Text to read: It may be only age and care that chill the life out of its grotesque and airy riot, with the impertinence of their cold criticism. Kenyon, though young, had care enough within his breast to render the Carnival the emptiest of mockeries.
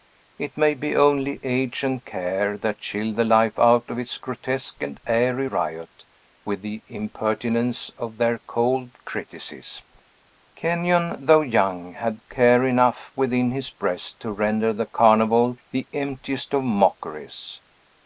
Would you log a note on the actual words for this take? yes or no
no